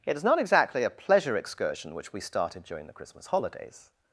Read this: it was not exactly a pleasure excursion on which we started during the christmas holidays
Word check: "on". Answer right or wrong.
wrong